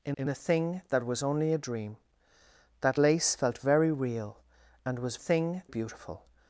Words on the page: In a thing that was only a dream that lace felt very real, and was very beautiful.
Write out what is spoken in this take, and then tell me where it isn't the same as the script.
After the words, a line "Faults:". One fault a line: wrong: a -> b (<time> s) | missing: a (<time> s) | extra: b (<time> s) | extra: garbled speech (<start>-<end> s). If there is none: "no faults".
In in a thing that was only a dream that lace felt very real, and was thing beautiful.
Faults:
extra: in (0.1 s)
wrong: very -> thing (5.1 s)